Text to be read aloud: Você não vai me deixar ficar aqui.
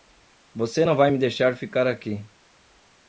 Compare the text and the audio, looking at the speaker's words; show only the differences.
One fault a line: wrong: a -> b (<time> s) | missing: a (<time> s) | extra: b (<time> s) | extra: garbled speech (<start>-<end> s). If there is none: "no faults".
no faults